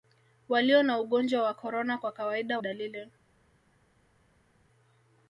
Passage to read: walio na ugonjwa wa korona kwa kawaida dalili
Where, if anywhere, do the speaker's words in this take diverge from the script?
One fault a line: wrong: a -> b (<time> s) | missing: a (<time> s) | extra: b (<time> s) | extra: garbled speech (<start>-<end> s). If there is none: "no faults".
no faults